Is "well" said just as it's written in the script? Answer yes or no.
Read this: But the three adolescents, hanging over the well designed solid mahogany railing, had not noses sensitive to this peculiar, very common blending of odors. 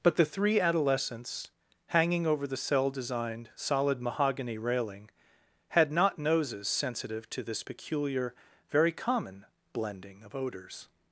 no